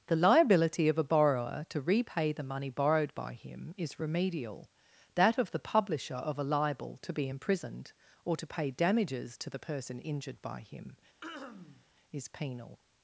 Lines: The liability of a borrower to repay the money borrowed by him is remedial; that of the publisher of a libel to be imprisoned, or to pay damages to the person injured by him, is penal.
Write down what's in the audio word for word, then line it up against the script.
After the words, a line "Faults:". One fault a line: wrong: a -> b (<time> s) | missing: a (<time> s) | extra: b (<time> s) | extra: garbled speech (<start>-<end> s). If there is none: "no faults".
The liability of a borrower to repay the money borrowed by him is remedial; that of the publisher of a libel to be imprisoned, or to pay damages to the person injured by him, is penal.
Faults:
no faults